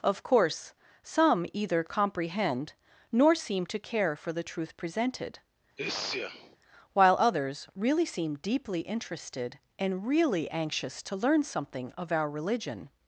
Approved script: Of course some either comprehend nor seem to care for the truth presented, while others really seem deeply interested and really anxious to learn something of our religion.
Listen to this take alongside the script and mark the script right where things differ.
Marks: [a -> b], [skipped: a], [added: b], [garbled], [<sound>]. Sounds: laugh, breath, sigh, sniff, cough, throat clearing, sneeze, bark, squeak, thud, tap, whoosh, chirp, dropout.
Of course some either comprehend nor seem to care for the truth presented, [sneeze] while others really seem deeply interested and really anxious to learn something of our religion.